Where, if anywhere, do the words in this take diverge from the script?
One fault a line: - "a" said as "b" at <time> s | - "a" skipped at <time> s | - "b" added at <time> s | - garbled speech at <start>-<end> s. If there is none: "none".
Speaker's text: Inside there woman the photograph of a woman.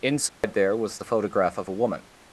- "woman" said as "was" at 0.8 s